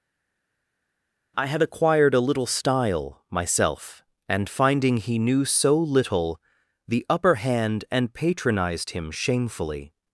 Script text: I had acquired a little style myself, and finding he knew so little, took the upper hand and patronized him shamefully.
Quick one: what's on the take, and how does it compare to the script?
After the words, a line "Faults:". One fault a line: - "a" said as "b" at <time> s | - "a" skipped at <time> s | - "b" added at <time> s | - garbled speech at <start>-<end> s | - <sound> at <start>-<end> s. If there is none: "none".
I had acquired a little style myself, and finding he knew so little, the upper hand and patronized him shamefully.
Faults:
- "took" skipped at 6.4 s